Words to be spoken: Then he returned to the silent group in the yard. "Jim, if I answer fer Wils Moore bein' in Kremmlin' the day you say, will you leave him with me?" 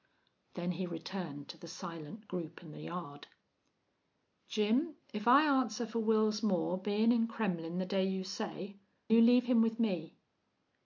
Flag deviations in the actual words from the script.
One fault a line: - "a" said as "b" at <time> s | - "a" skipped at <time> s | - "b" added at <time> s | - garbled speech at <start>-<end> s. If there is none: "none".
- "will" skipped at 8.8 s